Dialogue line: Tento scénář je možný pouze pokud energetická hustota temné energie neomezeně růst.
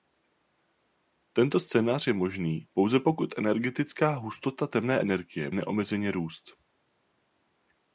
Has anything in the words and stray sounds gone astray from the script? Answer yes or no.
no